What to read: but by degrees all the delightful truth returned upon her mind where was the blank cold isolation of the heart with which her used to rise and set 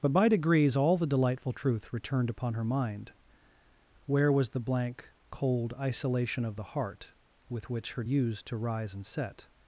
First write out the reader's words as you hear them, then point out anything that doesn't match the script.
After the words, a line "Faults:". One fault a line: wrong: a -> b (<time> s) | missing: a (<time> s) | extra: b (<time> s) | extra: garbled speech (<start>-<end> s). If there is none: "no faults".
but by degrees all the delightful truth returned upon her mind where was the blank cold isolation of the heart with which her used to rise and set
Faults:
no faults